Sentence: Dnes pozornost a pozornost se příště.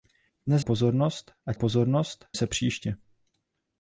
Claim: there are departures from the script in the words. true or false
false